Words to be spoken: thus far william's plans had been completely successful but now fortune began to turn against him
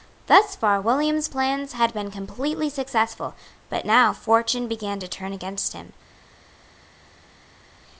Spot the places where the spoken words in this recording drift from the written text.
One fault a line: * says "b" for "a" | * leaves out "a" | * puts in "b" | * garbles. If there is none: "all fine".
all fine